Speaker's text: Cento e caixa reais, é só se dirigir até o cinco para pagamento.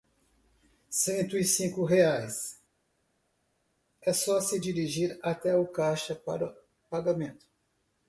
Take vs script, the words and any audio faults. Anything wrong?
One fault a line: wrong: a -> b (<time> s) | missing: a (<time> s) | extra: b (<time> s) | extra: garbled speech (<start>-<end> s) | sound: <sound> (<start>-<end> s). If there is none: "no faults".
wrong: caixa -> cinco (1.4 s)
wrong: cinco -> caixa (5.7 s)